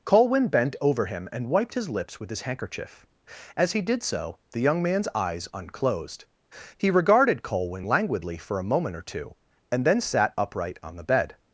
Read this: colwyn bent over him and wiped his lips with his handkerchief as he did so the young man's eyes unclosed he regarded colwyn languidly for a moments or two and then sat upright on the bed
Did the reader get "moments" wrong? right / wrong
wrong